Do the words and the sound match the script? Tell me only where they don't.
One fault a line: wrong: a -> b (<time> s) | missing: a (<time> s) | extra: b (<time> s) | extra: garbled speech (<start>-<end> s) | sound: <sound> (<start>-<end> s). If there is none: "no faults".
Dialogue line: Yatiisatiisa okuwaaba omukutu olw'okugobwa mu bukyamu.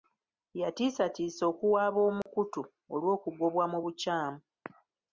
sound: dropout (2.2-2.3 s)